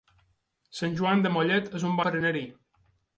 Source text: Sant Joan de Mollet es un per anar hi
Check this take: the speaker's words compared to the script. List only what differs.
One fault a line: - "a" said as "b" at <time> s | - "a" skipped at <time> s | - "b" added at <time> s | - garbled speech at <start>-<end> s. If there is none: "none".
none